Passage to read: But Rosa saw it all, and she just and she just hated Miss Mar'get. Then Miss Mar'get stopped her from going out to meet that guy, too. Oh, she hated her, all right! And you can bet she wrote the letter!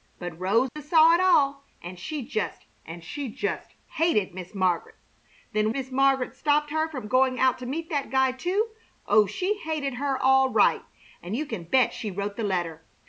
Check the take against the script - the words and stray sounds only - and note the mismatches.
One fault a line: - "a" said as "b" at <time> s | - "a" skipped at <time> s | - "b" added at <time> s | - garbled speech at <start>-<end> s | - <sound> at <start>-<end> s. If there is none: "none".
- dropout at 0.7-0.8 s